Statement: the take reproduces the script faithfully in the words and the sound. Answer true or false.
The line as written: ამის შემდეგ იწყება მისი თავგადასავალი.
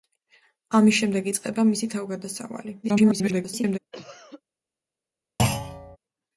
false